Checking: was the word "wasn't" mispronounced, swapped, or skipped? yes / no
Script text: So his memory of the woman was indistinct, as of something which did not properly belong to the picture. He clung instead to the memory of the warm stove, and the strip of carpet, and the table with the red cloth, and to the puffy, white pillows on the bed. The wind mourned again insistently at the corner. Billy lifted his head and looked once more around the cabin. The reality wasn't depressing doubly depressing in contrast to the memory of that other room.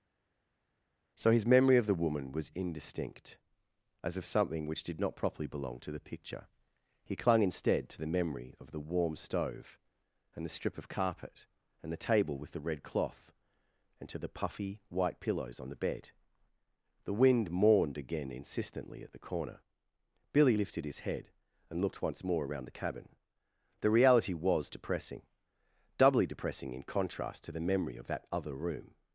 yes